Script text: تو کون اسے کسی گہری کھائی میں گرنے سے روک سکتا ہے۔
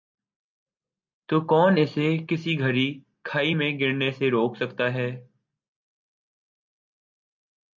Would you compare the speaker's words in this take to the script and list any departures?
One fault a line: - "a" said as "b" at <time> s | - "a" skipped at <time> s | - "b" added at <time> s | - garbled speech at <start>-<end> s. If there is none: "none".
none